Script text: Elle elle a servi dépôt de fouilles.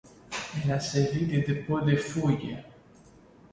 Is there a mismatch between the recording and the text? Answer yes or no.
yes